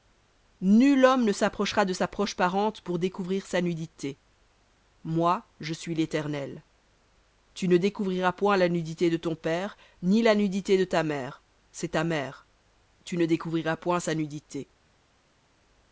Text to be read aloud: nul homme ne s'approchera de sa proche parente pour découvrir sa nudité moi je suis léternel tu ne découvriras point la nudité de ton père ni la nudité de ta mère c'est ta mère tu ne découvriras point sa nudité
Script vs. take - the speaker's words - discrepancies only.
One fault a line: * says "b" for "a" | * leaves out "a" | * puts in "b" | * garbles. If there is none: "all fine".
all fine